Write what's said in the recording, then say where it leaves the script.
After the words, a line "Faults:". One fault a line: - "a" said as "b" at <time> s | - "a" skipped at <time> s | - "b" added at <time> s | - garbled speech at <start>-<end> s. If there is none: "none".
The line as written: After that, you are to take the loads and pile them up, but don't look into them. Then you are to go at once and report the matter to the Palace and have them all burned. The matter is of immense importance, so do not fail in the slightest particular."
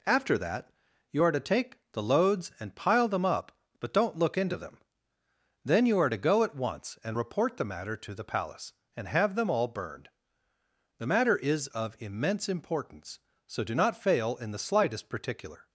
After that, you are to take the loads and pile them up, but don't look into them. Then you are to go at once and report the matter to the Palace and have them all burned. The matter is of immense importance, so do not fail in the slightest particular."
Faults:
none